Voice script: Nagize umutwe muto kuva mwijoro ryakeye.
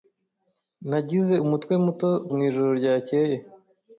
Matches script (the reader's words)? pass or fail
fail